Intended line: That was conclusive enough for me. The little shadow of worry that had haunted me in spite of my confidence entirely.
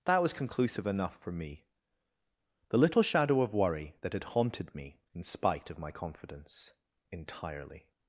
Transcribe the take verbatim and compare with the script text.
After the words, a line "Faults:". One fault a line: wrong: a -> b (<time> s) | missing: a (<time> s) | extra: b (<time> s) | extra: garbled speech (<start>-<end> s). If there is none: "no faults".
That was conclusive enough for me. The little shadow of worry that had haunted me in spite of my confidence entirely.
Faults:
no faults